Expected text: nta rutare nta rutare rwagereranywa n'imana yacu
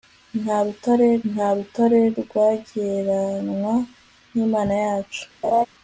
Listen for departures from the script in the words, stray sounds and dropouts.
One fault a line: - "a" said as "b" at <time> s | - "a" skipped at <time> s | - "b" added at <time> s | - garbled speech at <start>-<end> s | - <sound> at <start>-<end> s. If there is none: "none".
- laugh at 5.4-5.7 s